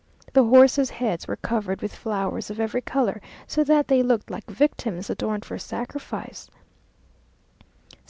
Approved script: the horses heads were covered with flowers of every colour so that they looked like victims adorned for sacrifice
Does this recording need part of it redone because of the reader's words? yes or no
no